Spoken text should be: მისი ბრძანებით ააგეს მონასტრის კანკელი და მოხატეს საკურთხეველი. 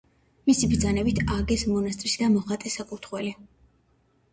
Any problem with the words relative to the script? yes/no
yes